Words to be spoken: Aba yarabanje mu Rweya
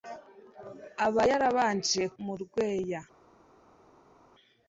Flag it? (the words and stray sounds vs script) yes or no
no